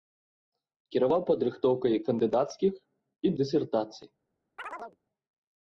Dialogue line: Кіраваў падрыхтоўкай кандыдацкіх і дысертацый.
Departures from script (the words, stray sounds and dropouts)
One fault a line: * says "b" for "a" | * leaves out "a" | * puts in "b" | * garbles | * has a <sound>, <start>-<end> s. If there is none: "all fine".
* has a chirp, 4.6-5.0 s